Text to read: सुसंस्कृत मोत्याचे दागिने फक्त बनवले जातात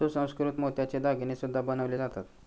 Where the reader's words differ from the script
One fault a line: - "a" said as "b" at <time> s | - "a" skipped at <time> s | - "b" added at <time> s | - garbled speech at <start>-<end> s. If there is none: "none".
- "फक्त" said as "सुद्धा" at 1.3 s